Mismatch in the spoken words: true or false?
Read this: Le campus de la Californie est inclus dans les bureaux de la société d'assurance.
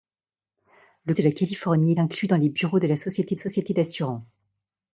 true